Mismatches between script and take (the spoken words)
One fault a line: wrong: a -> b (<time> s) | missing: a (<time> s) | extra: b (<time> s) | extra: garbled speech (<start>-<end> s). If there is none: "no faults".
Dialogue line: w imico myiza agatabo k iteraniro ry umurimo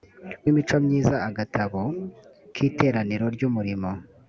no faults